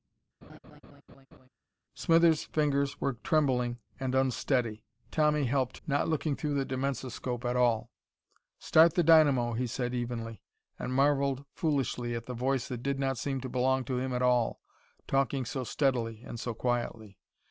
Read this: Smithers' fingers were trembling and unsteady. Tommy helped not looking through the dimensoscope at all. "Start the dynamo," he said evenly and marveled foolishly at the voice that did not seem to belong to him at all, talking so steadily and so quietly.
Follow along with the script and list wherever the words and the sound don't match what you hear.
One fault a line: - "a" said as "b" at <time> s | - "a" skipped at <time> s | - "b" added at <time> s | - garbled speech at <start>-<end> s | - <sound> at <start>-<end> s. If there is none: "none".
- laugh at 0.4-1.5 s